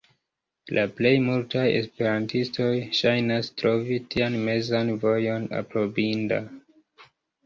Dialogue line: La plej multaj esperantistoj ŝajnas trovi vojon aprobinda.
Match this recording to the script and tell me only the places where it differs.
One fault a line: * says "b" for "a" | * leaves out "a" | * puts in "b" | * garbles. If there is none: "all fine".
* puts in "tian mezan"